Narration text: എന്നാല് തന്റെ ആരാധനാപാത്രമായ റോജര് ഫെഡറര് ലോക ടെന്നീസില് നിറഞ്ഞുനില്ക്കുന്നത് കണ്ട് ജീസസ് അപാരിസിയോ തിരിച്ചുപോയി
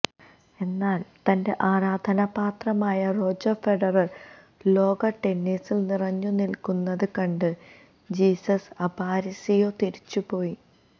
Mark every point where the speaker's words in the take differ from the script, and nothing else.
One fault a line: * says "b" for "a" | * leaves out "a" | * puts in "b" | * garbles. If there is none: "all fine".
all fine